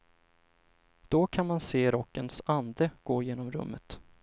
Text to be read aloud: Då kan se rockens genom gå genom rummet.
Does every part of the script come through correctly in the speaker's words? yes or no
no